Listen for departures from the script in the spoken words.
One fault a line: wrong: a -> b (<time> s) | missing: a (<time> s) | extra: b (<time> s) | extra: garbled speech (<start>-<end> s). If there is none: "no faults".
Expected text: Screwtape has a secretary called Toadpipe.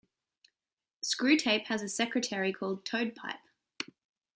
no faults